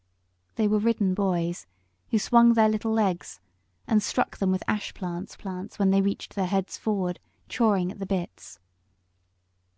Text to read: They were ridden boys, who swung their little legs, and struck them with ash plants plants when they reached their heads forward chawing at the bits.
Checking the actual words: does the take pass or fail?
pass